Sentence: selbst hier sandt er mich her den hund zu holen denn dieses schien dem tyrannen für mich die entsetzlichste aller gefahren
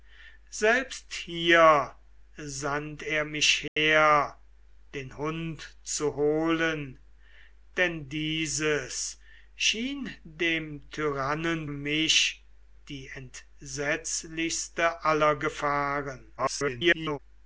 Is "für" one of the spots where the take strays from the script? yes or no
yes